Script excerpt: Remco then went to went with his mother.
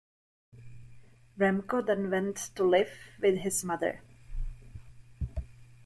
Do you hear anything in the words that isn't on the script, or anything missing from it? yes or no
yes